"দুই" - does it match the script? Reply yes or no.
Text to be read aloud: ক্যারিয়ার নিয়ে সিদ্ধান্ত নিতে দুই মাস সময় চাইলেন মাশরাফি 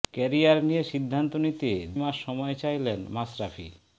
no